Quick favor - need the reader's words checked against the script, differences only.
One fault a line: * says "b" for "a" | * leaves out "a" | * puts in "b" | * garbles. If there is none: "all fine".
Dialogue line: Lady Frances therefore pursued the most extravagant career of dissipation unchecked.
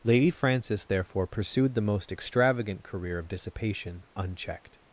all fine